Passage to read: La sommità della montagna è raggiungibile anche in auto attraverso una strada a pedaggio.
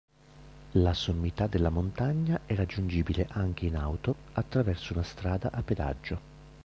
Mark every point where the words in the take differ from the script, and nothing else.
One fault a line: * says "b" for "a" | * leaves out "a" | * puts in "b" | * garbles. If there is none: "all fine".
all fine